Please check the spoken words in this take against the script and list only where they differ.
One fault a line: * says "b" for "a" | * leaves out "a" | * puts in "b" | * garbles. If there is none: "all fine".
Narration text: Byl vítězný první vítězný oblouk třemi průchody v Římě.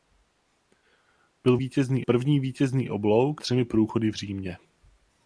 all fine